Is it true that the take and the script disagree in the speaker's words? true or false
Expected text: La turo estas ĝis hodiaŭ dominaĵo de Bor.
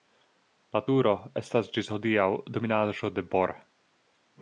false